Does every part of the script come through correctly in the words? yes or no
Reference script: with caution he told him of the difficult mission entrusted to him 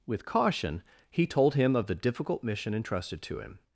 yes